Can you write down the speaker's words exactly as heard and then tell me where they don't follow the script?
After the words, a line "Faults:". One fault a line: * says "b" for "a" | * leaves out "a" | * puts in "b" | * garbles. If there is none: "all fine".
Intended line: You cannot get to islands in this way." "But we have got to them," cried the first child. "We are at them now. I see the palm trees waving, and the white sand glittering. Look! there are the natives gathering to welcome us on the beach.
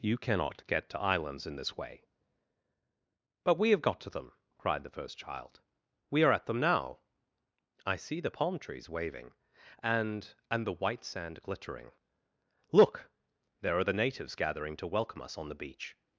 You cannot get to islands in this way." "But we have got to them," cried the first child. "We are at them now. I see the palm trees waving, and and the white sand glittering. Look! there are the natives gathering to welcome us on the beach.
Faults:
* puts in "and"